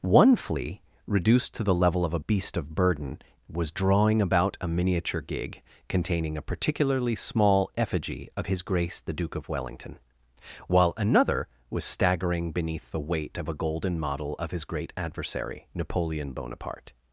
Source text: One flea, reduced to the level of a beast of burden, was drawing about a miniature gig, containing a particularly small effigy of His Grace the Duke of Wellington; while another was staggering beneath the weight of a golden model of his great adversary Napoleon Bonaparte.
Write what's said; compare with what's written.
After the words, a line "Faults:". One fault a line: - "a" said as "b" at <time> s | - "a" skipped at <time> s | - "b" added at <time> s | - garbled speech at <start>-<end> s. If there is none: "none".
One flea, reduced to the level of a beast of burden, was drawing about a miniature gig, containing a particularly small effigy of His Grace the Duke of Wellington; while another was staggering beneath the weight of a golden model of his great adversary Napoleon Bonaparte.
Faults:
none